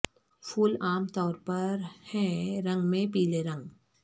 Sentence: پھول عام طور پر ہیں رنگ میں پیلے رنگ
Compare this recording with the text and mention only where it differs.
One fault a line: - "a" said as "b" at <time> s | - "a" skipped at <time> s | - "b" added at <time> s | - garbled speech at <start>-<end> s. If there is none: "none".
none